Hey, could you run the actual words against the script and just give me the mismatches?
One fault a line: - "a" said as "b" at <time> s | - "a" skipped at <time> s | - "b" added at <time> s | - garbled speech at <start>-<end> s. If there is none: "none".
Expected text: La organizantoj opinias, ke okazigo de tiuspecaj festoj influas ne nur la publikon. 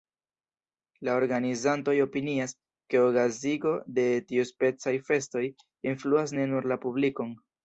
none